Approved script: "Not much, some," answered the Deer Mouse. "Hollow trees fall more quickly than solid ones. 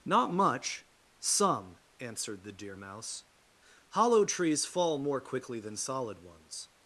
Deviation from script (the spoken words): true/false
false